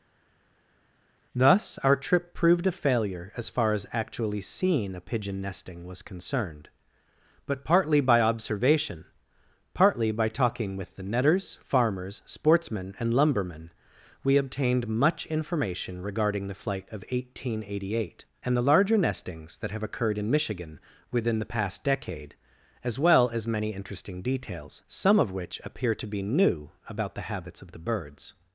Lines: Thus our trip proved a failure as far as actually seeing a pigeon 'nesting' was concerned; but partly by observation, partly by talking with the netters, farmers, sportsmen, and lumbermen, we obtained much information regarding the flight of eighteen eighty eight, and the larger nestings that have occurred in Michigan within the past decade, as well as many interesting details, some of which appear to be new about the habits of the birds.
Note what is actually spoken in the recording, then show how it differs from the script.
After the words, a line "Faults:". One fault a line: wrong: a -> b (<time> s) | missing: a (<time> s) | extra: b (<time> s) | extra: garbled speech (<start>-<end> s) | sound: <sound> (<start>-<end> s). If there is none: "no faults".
Thus our trip proved a failure as far as actually seeing a pigeon 'nesting' was concerned; but partly by observation, partly by talking with the netters, farmers, sportsmen, and lumbermen, we obtained much information regarding the flight of eighteen eighty eight, and the larger nestings that have occurred in Michigan within the past decade, as well as many interesting details, some of which appear to be new about the habits of the birds.
Faults:
no faults